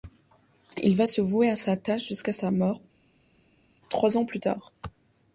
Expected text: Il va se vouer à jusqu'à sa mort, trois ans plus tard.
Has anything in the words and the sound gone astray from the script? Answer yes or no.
yes